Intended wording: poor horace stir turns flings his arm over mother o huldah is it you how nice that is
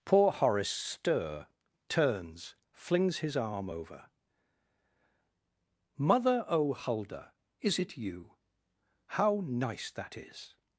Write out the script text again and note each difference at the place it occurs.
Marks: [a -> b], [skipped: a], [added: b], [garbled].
poor horace stir turns flings his arm over mother o huldah is it you how nice that is